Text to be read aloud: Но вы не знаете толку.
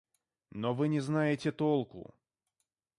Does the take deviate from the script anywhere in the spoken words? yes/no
no